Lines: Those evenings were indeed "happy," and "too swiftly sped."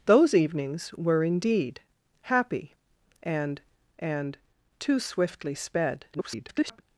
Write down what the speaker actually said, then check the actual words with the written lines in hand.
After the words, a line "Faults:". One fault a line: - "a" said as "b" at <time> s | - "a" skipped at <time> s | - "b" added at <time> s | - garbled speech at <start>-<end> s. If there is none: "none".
Those evenings were indeed "happy," and and "too swiftly sped." [garbled]
Faults:
- "and" added at 4.0 s
- garbled speech at 6.1-6.8 s